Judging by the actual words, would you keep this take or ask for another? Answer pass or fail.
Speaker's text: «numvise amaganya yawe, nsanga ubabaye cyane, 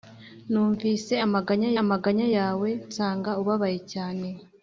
fail